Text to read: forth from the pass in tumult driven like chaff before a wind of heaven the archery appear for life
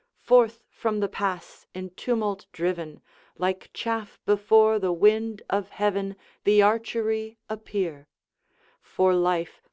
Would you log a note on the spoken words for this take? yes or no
yes